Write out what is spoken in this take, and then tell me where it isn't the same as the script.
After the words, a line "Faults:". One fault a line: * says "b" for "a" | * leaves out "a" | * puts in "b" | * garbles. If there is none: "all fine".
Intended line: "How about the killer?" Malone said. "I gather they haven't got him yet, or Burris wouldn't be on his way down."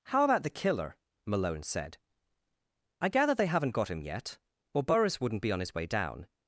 "How about the killer?" Malone said. "I gather they haven't got him yet, or Burris wouldn't be on his way down."
Faults:
all fine